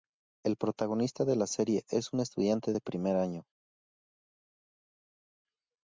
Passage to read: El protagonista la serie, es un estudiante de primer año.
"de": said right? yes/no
yes